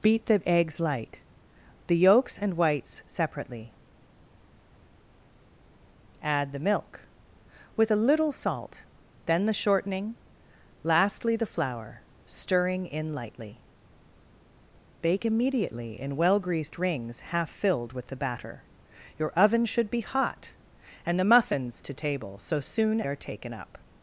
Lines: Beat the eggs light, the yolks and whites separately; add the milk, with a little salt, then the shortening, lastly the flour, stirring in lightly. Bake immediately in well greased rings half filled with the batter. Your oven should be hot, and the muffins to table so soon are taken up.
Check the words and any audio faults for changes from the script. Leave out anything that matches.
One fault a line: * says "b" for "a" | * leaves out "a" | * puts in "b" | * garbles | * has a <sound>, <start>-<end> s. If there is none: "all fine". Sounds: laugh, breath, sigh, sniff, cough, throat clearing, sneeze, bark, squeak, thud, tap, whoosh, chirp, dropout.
all fine